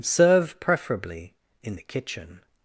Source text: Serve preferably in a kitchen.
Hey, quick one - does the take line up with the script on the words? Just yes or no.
no